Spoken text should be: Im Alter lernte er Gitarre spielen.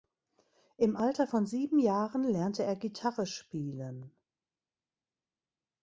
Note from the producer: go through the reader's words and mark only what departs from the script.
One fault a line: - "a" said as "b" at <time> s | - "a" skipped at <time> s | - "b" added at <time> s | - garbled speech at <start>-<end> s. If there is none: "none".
- "von sieben Jahren" added at 1.3 s